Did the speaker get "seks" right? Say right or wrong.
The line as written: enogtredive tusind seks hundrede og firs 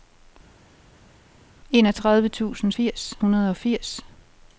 wrong